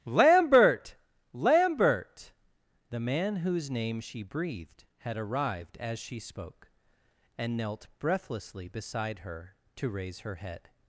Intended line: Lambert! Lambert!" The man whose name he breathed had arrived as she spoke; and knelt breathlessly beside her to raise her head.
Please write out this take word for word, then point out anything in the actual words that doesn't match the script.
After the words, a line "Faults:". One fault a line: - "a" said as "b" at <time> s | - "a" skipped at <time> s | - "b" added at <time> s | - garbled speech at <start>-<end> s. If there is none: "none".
Lambert! Lambert!" The man whose name she breathed had arrived as she spoke; and knelt breathlessly beside her to raise her head.
Faults:
- "he" said as "she" at 4.0 s